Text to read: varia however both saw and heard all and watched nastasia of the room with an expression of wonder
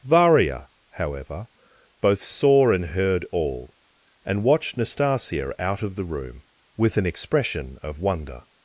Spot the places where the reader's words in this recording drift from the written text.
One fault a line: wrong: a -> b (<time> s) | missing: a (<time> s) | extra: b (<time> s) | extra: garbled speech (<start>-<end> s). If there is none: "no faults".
extra: out (5.6 s)